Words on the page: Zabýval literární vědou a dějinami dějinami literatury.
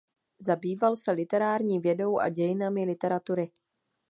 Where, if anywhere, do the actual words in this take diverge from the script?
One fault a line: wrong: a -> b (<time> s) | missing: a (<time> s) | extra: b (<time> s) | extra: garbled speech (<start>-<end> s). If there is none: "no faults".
extra: se (0.9 s)
missing: dějinami (2.9 s)